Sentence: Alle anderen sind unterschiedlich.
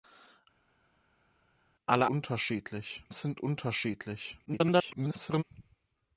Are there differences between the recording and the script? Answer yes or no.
yes